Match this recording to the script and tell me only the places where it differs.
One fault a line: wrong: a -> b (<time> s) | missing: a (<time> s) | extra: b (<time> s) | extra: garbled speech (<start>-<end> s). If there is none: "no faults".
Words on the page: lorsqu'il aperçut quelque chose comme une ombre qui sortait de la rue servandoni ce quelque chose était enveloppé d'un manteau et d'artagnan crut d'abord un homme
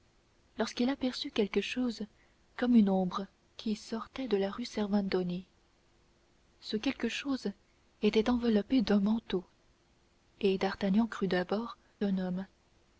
no faults